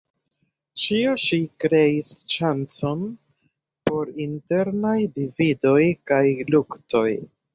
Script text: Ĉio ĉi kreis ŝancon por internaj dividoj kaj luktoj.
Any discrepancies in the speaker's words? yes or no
no